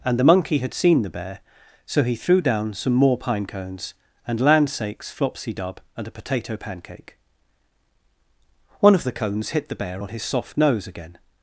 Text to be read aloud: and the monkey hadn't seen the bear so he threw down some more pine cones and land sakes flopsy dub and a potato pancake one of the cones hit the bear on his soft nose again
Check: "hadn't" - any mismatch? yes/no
yes